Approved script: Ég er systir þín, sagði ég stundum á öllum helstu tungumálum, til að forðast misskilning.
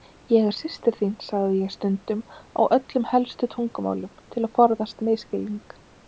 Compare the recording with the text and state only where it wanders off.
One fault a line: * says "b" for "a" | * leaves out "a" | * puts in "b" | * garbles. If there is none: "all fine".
all fine